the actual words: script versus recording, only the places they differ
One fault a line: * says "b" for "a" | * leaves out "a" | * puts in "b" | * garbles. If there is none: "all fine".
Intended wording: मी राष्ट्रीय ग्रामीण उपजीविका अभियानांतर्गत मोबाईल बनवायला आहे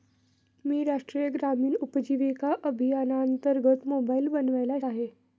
all fine